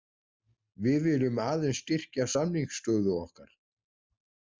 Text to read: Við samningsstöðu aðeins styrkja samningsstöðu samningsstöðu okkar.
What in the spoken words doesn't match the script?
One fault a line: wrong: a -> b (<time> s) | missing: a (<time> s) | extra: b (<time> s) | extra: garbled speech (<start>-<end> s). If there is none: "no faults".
wrong: samningsstöðu -> viljum (1.1 s)
missing: samningsstöðu (3.2 s)